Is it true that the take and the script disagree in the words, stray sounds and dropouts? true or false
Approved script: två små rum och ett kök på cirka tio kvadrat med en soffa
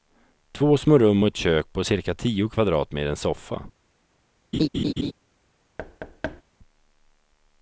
true